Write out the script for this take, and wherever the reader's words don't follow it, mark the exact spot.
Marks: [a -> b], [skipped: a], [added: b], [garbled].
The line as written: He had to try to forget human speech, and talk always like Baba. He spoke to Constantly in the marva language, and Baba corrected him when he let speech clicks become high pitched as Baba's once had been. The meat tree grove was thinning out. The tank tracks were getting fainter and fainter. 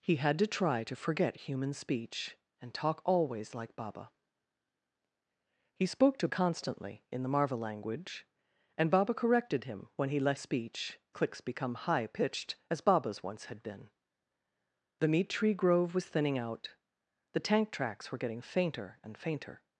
He had to try to forget human speech, and talk always like Baba. He spoke to Constantly in the marva language, and Baba corrected him when he let speech clicks become high pitched as Baba's once had been. The meat tree grove was thinning out. The tank tracks were getting fainter and fainter.